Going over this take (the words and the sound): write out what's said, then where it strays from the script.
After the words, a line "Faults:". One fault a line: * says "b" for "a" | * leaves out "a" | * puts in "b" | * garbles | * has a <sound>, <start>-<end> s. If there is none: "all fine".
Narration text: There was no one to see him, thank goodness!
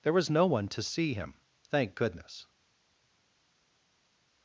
There was no one to see him, thank goodness!
Faults:
all fine